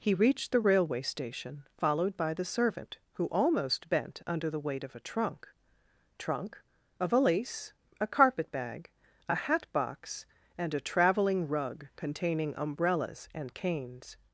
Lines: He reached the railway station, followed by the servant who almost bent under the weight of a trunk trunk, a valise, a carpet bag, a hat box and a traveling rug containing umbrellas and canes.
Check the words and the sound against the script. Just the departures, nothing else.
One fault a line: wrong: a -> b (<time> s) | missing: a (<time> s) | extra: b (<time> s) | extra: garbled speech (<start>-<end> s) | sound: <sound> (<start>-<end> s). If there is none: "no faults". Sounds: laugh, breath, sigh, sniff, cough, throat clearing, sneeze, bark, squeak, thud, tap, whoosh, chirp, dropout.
no faults